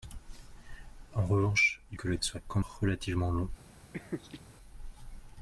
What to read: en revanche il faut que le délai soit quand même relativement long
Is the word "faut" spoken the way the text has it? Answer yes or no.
no